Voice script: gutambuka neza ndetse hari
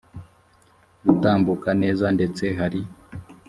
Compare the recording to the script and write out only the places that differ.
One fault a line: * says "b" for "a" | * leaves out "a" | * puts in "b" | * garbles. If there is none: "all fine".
all fine